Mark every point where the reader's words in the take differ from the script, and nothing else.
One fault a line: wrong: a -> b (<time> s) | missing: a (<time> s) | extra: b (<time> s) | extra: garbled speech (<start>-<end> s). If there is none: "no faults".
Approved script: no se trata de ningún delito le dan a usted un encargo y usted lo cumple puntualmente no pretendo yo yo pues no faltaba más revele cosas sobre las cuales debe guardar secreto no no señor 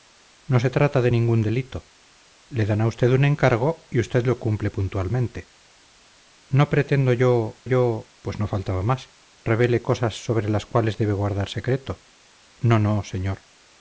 no faults